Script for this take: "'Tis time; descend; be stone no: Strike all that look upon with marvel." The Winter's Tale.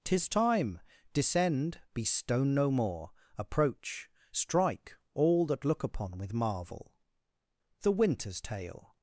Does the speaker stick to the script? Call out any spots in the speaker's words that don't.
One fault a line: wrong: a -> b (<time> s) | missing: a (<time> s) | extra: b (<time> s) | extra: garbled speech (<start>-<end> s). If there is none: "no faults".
extra: more approach (2.7 s)